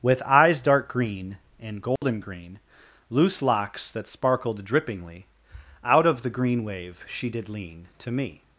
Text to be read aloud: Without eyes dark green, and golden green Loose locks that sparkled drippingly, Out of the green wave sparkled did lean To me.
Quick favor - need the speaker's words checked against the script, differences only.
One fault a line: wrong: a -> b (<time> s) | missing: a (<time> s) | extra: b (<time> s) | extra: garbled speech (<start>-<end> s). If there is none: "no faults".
wrong: Without -> With (0.0 s)
wrong: sparkled -> she (7.1 s)